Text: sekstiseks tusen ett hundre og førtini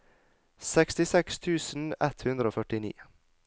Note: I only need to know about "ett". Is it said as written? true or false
true